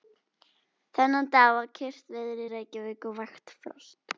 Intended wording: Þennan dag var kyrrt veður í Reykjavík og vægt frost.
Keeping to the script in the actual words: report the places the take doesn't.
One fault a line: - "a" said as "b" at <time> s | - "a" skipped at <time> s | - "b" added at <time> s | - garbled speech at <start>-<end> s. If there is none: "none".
none